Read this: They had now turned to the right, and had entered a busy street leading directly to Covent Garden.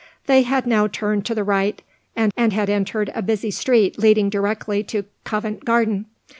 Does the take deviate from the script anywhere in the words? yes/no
yes